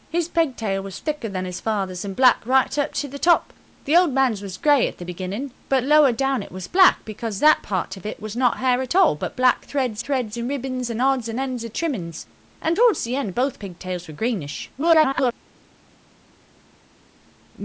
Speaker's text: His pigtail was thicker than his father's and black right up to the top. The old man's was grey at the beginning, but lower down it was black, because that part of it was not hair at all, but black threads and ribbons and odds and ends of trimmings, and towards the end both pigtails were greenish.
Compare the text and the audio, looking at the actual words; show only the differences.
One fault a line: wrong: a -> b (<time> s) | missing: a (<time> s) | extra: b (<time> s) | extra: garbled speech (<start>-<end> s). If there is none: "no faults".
extra: threads (10.0 s)
extra: garbled speech (14.8-15.3 s)